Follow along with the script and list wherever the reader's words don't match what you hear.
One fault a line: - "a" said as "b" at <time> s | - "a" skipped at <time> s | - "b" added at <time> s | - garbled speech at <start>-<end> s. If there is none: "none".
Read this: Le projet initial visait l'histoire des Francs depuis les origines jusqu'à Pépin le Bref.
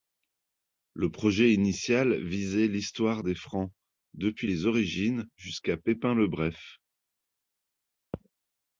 none